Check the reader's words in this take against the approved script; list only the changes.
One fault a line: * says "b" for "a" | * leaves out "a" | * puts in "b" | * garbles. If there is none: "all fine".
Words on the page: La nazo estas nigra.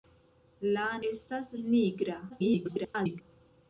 * leaves out "nazo"
* garbles